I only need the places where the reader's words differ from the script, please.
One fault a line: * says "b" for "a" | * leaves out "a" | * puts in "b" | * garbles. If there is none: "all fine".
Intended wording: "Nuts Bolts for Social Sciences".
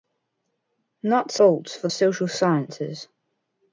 all fine